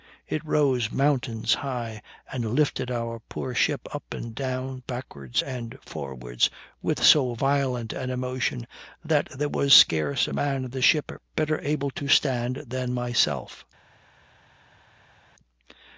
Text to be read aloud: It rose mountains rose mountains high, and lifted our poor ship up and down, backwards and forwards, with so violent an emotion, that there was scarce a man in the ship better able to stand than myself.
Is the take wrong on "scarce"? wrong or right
right